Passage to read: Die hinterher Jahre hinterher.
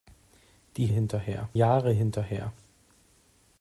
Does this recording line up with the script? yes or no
yes